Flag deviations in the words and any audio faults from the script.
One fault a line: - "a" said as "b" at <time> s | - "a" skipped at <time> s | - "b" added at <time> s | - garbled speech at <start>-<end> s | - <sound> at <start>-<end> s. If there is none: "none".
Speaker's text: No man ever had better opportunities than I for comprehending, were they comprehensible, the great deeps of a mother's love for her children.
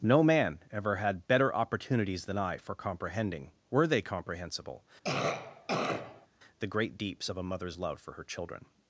- cough at 5.0-6.3 s